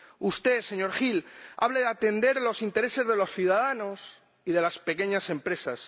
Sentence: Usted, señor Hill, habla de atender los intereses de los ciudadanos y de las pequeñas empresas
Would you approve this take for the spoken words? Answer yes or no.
yes